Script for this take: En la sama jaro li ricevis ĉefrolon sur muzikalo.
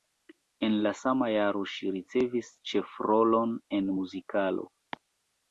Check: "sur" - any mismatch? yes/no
yes